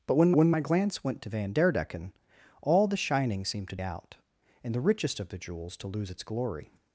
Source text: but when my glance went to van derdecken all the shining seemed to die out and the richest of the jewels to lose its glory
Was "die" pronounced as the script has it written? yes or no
no